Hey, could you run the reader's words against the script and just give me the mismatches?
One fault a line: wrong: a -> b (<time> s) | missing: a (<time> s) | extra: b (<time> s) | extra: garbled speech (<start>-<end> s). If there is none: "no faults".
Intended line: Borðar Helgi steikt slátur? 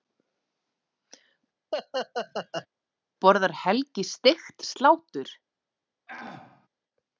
no faults